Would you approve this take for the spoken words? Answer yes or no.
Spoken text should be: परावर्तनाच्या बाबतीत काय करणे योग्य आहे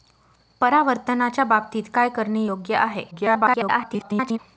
no